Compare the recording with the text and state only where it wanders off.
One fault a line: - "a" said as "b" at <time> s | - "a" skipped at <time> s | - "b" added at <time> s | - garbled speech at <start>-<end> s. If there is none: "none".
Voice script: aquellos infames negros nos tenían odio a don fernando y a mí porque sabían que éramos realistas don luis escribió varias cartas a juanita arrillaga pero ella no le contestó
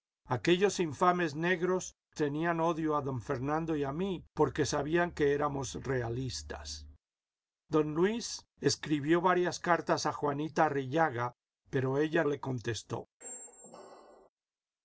- "nos" skipped at 1.9 s
- "no" skipped at 12.2 s